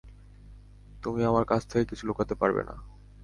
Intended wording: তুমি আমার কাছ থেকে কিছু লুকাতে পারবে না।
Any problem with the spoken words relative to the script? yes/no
no